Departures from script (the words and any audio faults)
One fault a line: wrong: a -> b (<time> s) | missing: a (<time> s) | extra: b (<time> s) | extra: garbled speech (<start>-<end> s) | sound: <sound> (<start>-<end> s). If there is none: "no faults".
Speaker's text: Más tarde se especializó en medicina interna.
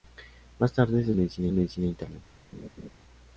wrong: especializó -> medicina (1.2 s)
sound: laugh (2.5-2.9 s)